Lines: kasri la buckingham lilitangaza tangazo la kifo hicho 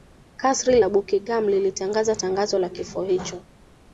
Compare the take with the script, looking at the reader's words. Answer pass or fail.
pass